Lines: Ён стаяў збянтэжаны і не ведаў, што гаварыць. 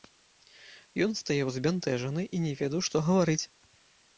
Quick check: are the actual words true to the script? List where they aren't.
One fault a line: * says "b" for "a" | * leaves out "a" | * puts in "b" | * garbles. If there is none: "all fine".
all fine